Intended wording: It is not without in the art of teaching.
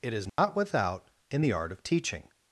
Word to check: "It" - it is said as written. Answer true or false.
true